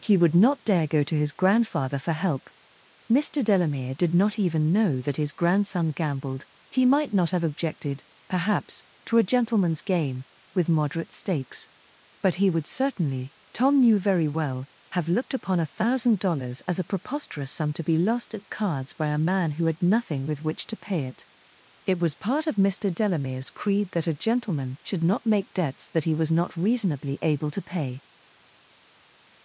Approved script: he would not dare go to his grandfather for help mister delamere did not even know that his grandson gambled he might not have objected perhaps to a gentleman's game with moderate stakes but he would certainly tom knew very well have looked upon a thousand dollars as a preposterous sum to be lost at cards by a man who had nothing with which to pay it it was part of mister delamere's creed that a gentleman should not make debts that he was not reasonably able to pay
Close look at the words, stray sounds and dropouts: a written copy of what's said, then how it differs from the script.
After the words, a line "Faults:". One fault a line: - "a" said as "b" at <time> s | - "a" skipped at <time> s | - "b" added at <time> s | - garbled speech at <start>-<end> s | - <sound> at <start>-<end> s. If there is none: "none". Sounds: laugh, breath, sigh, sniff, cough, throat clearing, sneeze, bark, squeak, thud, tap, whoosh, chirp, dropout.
he would not dare go to his grandfather for help mister delamere did not even know that his grandson gambled he might not have objected perhaps to a gentleman's game with moderate stakes but he would certainly tom knew very well have looked upon a thousand dollars as a preposterous sum to be lost at cards by a man who had nothing with which to pay it it was part of mister delamere's creed that a gentleman should not make debts that he was not reasonably able to pay
Faults:
none